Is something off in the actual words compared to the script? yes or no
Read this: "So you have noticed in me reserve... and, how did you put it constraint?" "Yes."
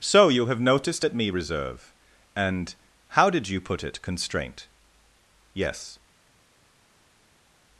yes